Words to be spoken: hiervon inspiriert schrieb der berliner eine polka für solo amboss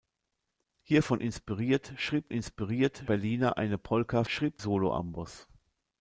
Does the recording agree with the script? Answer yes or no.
no